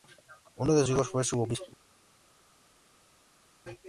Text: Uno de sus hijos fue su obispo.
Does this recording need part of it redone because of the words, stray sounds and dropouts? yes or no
yes